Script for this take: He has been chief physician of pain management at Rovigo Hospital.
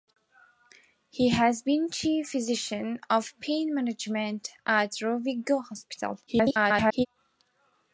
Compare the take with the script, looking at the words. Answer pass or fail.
fail